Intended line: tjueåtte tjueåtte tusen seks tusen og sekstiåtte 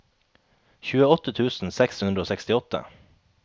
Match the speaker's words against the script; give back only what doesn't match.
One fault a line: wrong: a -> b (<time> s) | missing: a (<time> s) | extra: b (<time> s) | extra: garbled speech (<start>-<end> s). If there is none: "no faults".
missing: tjueåtte (1.4 s)
wrong: tusen -> hundre (2.0 s)